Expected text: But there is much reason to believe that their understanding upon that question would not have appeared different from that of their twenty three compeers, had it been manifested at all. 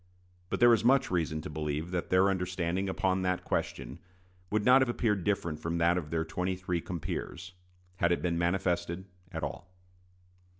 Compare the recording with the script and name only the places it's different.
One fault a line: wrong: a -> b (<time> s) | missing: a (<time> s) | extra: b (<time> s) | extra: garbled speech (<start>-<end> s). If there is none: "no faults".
no faults